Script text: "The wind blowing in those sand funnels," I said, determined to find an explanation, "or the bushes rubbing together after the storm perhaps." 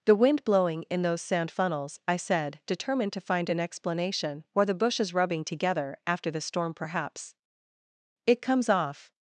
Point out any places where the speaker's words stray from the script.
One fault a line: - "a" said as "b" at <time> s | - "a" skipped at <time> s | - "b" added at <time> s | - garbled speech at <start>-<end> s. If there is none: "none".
- "It comes off" added at 8.3 s